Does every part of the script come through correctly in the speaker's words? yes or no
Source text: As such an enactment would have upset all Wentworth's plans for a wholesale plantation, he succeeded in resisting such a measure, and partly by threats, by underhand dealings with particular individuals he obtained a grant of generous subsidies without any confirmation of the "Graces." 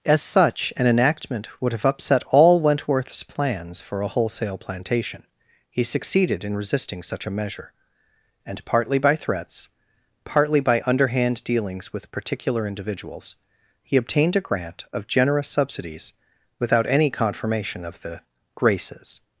no